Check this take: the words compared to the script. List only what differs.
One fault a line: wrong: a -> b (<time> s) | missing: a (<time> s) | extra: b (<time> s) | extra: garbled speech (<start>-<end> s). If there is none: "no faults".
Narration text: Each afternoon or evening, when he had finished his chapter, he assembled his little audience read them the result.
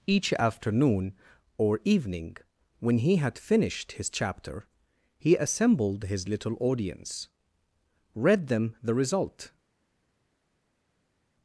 no faults